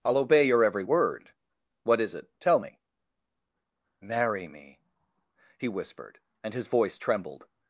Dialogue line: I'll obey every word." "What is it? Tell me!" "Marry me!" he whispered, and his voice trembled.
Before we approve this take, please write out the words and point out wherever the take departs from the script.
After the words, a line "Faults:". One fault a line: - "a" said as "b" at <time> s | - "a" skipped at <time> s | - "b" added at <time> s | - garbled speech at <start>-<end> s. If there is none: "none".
I'll obey your every word." "What is it? Tell me!" "Marry me!" he whispered, and his voice trembled.
Faults:
- "your" added at 0.4 s